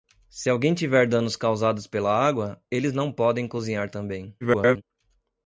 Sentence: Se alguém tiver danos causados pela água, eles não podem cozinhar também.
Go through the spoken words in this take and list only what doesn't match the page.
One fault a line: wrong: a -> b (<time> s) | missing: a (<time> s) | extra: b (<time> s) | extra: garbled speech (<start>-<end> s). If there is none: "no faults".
extra: garbled speech (4.4-4.8 s)